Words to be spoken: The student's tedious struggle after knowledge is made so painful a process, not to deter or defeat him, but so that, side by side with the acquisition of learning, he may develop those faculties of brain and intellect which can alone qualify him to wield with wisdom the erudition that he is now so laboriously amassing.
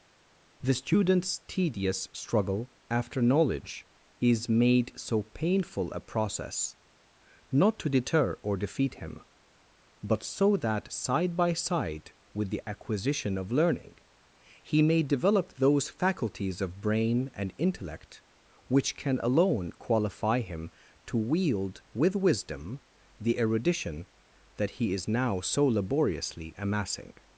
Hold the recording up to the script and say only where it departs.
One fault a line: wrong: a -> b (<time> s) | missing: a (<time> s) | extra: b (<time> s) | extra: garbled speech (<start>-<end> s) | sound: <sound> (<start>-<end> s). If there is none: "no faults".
no faults